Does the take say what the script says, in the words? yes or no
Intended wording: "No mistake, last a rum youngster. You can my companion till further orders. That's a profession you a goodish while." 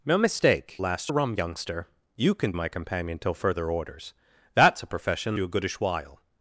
yes